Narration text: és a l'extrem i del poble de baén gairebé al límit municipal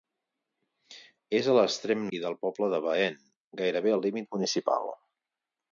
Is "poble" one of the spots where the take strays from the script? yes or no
no